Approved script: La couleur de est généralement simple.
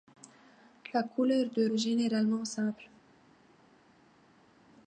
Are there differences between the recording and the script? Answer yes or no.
no